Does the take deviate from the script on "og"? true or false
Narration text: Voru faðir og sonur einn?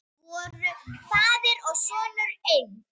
false